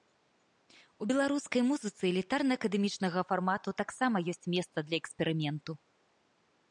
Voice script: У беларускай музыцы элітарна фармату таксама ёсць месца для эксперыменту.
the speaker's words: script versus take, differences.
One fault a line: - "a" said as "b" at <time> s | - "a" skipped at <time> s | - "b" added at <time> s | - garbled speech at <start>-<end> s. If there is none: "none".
- "акадэмічнага" added at 2.6 s